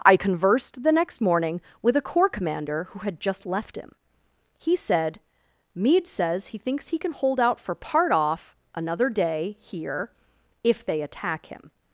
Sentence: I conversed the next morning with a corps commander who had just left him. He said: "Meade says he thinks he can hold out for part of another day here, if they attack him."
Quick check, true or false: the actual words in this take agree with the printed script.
false